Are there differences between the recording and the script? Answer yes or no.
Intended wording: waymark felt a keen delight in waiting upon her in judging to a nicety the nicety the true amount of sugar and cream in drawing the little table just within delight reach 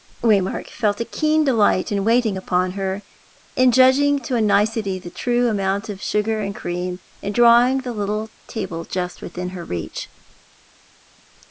yes